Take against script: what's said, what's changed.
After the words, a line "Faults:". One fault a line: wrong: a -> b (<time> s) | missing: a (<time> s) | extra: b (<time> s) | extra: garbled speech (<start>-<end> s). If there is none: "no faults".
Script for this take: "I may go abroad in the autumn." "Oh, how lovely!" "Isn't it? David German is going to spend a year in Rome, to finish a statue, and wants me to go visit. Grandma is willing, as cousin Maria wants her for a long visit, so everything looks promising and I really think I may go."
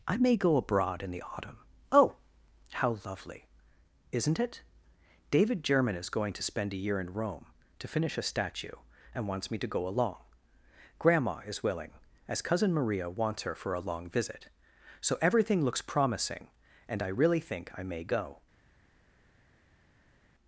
"I may go abroad in the autumn." "Oh, how lovely!" "Isn't it? David German is going to spend a year in Rome, to finish a statue, and wants me to go along. Grandma is willing, as cousin Maria wants her for a long visit, so everything looks promising and I really think I may go."
Faults:
wrong: visit -> along (9.9 s)